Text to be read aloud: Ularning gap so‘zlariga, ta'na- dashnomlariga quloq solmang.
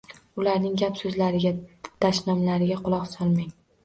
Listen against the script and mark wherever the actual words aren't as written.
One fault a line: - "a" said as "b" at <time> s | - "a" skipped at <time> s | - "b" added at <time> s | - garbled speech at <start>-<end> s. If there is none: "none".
- "ta'na" skipped at 1.5 s